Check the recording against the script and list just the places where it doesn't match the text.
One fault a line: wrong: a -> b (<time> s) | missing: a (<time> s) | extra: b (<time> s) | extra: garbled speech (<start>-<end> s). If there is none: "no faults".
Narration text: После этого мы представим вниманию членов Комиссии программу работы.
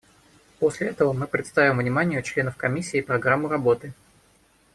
no faults